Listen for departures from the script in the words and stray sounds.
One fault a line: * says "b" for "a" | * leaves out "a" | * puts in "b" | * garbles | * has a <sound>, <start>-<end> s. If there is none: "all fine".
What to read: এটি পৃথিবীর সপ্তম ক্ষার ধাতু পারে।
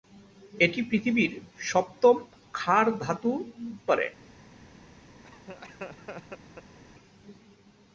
* has a laugh, 5.2-6.8 s